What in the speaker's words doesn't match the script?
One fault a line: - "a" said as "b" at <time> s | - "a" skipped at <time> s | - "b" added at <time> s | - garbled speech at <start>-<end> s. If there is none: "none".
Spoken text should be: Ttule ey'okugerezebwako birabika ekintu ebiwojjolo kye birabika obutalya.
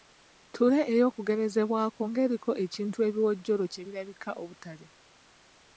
- "birabika" said as "ng'eriko" at 2.1 s